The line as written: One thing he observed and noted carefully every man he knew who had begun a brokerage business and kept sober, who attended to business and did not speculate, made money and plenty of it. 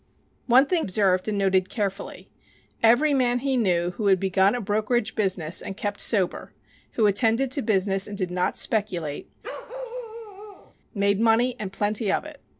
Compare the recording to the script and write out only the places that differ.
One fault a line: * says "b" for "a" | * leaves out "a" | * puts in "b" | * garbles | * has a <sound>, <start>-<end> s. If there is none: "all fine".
* leaves out "he"
* has a bark, 9.4-10.7 s